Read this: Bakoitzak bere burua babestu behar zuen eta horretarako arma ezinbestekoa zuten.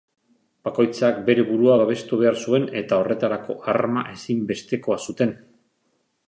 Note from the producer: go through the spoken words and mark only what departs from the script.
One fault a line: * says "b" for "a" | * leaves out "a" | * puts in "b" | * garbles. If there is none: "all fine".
all fine